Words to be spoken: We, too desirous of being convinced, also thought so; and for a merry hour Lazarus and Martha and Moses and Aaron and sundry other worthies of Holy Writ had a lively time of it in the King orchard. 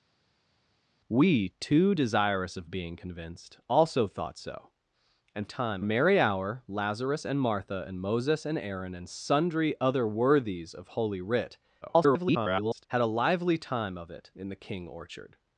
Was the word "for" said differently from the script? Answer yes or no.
yes